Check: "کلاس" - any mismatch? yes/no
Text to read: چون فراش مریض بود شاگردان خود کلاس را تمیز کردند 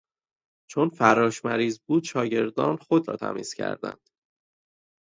yes